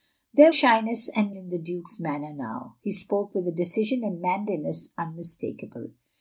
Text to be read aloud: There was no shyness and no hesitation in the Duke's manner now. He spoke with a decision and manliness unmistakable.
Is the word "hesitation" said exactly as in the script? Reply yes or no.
no